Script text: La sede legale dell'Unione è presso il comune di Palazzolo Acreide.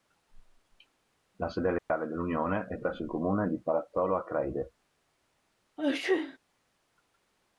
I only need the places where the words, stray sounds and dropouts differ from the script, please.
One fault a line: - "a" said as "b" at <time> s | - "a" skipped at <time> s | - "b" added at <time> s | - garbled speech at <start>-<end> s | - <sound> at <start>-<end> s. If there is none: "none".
- dropout at 1.8-1.9 s
- sneeze at 5.8-6.4 s